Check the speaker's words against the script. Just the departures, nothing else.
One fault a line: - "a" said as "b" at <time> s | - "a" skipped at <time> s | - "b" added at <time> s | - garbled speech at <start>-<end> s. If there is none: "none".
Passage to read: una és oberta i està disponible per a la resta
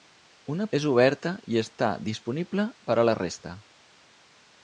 none